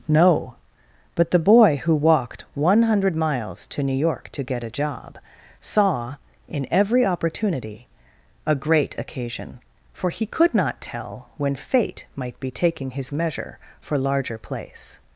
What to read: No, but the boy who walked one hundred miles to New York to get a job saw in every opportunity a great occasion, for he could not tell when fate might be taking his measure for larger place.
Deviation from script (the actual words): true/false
false